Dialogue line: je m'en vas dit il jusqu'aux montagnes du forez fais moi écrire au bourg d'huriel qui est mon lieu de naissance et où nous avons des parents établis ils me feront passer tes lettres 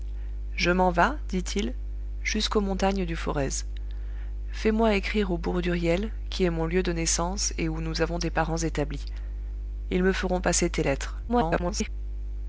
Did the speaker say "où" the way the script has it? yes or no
yes